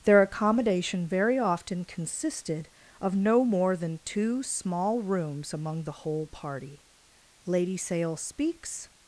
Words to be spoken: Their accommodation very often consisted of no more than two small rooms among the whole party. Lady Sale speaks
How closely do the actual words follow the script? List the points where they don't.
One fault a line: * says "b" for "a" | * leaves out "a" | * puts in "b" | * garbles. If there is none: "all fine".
all fine